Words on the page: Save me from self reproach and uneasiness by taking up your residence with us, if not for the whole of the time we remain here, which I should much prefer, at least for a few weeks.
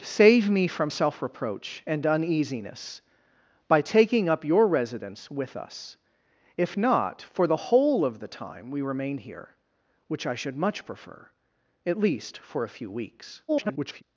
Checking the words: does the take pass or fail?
fail